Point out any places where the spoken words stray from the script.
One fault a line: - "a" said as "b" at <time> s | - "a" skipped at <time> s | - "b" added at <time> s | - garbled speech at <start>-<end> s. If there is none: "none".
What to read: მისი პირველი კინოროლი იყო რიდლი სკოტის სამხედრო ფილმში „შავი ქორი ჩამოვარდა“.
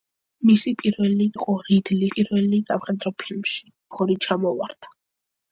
- "კინოროლი" skipped at 1.2 s
- "სკოტის" said as "პირველი" at 2.1 s
- "შავი" skipped at 3.7 s